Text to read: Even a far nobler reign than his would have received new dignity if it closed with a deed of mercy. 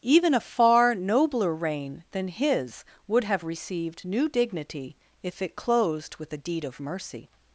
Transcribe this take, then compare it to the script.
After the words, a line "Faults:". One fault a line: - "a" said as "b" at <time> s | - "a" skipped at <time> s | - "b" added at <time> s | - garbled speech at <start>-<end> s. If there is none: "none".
Even a far nobler reign than his would have received new dignity if it closed with a deed of mercy.
Faults:
none